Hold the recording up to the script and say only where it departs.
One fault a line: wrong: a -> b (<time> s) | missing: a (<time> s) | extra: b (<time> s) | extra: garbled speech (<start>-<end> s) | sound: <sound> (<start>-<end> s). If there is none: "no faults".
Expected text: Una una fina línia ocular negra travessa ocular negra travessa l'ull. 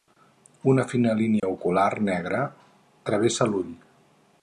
missing: una (0.8 s)
sound: dropout (1.4-1.4 s)
missing: ocular negra travessa (3.5 s)